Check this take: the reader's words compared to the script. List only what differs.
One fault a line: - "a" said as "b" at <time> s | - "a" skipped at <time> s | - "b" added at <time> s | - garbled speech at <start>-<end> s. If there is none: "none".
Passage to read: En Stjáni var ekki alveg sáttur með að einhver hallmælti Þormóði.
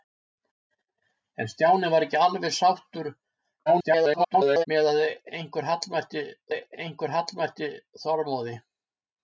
- garbled speech at 3.7-4.7 s
- "einhver hallmælti" added at 6.5 s